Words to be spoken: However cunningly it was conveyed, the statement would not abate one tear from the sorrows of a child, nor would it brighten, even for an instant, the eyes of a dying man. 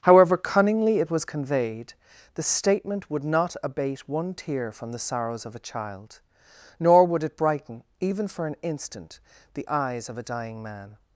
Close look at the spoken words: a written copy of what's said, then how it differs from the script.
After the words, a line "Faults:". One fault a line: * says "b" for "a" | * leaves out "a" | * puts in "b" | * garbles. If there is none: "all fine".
However cunningly it was conveyed, the statement would not abate one tear from the sorrows of a child, nor would it brighten, even for an instant, the eyes of a dying man.
Faults:
all fine